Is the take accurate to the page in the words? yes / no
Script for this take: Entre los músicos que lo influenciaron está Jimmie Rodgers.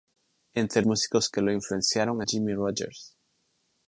no